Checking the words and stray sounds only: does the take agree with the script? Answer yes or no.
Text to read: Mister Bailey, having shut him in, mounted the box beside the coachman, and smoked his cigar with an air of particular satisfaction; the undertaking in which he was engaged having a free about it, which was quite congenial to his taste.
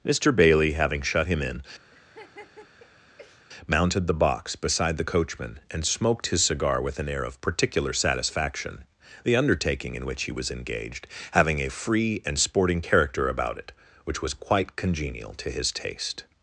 no